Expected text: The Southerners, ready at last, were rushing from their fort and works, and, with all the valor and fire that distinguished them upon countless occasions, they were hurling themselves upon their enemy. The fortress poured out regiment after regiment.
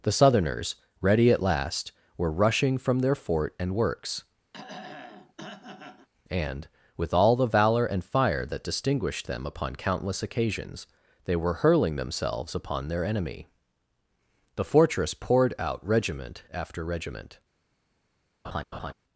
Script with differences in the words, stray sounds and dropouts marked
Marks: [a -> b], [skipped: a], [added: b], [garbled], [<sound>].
The Southerners, ready at last, were rushing from their fort and works, [throat clearing] and, with all the valor and fire that distinguished them upon countless occasions, they were hurling themselves upon their enemy. The fortress poured out regiment after regiment. [laugh]